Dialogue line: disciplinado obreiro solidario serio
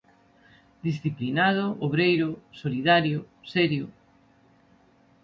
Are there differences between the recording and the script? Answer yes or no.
no